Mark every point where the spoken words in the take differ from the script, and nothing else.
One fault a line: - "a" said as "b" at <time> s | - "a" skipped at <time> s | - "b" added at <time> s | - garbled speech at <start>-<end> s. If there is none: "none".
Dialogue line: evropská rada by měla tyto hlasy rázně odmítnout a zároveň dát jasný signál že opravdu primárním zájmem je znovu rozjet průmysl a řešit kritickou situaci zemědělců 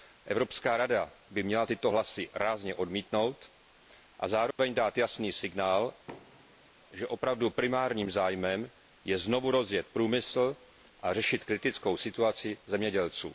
none